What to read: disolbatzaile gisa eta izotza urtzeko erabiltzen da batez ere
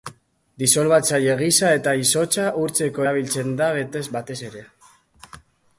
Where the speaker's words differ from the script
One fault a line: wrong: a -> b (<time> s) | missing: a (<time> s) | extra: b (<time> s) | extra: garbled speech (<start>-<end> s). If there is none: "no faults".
no faults